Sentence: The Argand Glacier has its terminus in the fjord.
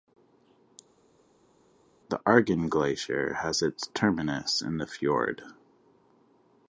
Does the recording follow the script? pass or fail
pass